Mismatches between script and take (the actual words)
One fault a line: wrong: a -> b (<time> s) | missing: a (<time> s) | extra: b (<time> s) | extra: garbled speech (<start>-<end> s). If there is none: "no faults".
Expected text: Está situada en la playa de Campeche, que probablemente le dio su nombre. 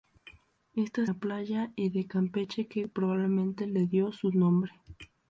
missing: situada en (1.1 s)